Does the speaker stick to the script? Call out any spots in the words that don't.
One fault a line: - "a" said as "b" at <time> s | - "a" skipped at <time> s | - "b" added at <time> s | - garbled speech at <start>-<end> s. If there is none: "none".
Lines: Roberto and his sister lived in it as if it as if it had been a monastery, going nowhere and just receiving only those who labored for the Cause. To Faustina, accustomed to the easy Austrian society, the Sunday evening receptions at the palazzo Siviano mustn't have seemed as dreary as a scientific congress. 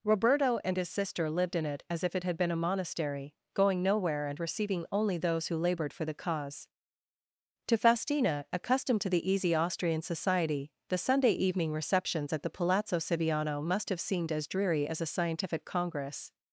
- "as if it" skipped at 2.2 s
- "just" skipped at 4.4 s
- "mustn't" said as "must" at 13.6 s